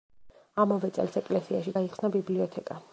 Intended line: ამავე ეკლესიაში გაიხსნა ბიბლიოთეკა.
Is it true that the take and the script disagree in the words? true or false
true